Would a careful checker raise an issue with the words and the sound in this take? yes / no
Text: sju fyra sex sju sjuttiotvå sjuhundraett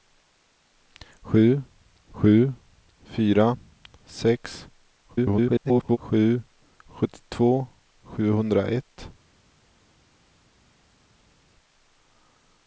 yes